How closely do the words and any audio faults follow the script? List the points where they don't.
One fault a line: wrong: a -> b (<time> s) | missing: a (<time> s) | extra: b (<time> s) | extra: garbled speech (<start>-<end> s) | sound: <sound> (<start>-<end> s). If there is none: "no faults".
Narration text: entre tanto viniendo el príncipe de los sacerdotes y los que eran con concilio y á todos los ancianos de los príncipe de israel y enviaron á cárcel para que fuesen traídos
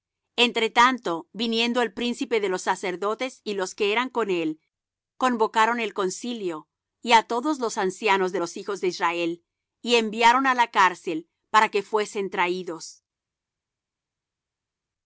extra: él convocaron el (4.3 s)
wrong: príncipe -> hijos (8.6 s)
extra: la (10.5 s)